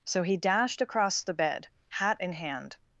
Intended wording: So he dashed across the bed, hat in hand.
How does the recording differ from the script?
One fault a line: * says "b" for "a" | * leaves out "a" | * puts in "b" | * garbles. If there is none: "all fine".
all fine